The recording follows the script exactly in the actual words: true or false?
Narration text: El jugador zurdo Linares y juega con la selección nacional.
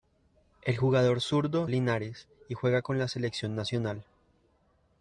true